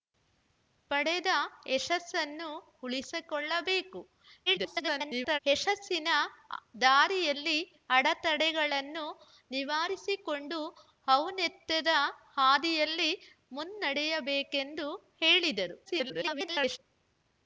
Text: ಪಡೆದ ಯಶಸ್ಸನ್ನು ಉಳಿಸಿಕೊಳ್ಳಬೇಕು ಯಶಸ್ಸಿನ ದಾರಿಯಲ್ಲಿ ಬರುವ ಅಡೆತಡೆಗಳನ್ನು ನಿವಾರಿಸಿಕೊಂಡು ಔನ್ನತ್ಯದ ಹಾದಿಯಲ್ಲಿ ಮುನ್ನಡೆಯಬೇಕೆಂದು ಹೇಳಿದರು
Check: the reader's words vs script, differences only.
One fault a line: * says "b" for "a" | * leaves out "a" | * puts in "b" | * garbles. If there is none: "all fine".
* garbles
* leaves out "ಬರುವ"
* garbles